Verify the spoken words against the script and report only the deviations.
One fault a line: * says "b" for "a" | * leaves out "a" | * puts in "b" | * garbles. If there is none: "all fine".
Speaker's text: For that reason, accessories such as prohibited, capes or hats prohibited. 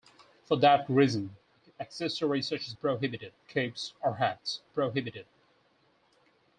all fine